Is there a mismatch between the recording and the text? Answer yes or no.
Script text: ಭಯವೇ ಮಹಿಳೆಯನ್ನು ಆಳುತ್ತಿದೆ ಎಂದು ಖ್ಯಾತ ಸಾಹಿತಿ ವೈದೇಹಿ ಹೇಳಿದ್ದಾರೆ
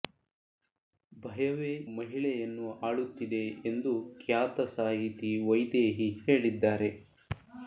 no